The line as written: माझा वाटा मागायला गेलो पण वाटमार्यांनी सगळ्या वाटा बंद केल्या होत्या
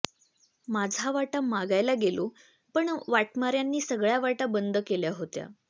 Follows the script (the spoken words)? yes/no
yes